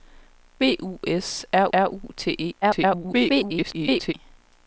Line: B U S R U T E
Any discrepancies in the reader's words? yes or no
yes